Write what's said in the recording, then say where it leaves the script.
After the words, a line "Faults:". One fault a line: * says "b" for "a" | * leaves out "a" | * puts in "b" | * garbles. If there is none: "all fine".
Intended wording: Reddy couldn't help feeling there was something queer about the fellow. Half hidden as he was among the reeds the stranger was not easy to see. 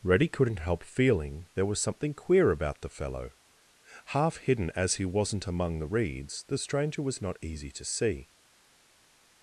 Reddy couldn't help feeling there was something queer about the fellow. Half hidden as he wasn't among the reeds the stranger was not easy to see.
Faults:
* says "wasn't" for "was"